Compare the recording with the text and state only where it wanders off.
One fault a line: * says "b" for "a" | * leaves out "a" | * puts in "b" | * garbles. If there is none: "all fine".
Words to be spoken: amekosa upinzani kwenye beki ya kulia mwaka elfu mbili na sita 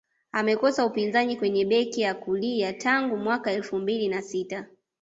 * puts in "tangu"